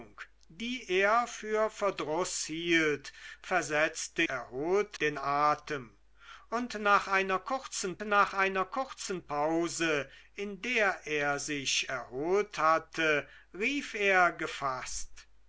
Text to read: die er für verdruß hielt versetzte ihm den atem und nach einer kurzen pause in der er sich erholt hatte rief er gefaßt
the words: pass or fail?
fail